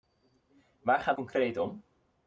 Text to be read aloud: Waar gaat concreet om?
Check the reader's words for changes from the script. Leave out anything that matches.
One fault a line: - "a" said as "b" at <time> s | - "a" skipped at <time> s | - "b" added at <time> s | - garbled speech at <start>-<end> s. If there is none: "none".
none